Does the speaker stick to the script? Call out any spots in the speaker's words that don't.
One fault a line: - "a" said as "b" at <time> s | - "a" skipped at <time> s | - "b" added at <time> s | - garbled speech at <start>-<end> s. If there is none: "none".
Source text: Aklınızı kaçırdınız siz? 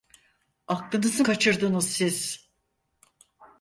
none